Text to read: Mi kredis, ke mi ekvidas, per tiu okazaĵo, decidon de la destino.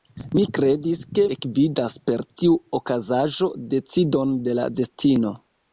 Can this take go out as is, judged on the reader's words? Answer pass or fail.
fail